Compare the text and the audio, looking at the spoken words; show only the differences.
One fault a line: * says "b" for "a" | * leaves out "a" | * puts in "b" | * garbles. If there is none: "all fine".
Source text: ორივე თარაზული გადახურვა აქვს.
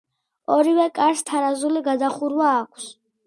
* puts in "კარს"